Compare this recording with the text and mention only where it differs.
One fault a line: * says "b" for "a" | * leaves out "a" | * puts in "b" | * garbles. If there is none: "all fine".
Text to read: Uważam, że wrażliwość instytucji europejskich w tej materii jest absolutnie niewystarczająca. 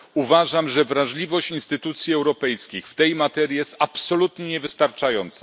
all fine